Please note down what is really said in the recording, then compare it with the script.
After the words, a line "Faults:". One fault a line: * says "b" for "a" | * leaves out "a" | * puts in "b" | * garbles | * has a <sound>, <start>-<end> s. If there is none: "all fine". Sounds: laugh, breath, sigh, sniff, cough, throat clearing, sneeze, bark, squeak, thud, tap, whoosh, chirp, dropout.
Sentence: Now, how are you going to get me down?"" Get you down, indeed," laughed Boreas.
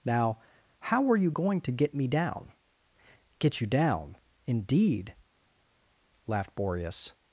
Now, how are you going to get me down?"" Get you down, indeed," laughed Boreas.
Faults:
all fine